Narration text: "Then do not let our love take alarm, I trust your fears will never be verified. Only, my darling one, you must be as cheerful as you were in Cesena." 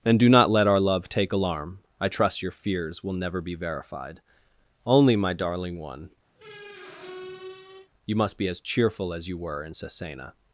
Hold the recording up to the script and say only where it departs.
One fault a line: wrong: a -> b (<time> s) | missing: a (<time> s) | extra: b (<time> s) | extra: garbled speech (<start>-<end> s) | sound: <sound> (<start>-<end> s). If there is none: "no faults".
wrong: Then -> And (0.0 s)
sound: squeak (6.4-7.9 s)